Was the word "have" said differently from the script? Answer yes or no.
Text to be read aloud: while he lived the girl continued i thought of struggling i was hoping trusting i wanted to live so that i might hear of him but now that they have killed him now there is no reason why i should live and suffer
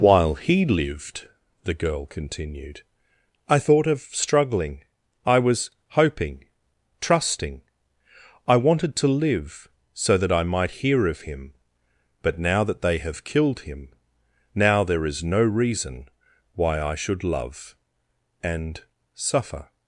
no